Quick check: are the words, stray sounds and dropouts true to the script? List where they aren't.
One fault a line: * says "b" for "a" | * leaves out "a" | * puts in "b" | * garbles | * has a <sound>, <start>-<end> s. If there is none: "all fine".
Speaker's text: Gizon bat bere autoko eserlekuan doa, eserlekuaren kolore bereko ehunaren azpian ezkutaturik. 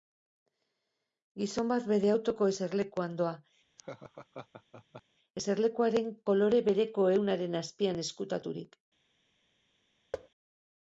* has a laugh, 3.8-5.0 s
* has a thud, 10.1-10.3 s